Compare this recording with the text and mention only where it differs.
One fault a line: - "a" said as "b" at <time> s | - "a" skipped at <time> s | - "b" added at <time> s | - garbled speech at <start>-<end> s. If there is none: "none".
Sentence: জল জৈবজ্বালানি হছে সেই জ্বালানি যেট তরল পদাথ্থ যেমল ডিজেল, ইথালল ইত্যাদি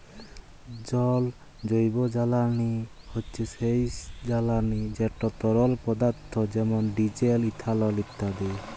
none